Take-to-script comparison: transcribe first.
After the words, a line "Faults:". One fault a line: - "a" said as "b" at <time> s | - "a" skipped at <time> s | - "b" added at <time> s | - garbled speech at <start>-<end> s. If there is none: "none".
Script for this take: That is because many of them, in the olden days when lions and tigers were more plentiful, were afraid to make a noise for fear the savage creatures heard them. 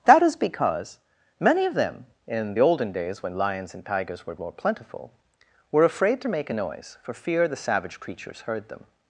That is because many of them, in the olden days when lions and tigers were more plentiful, were afraid to make a noise for fear the savage creatures heard them.
Faults:
none